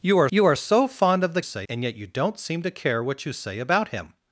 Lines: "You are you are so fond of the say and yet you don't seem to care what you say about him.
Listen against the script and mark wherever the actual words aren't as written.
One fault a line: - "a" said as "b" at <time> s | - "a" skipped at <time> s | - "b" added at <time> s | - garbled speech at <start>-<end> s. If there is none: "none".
none